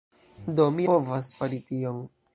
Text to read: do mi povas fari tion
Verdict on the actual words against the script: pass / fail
pass